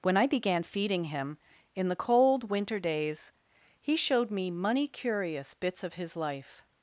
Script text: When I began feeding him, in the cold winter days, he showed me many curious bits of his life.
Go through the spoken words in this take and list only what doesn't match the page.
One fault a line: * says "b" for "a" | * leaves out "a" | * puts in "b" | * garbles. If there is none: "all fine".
* says "money" for "many"